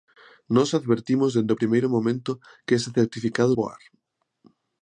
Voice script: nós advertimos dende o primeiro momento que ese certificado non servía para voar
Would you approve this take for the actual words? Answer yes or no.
no